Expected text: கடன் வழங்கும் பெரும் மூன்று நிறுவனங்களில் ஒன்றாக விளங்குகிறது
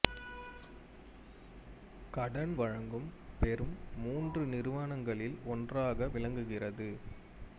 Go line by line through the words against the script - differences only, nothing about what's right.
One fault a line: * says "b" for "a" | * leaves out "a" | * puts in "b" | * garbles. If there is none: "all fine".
all fine